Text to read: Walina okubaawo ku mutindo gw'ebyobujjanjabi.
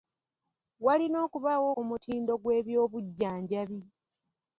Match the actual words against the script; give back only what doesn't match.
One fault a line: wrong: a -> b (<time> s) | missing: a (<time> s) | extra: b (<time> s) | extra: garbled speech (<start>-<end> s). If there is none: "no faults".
no faults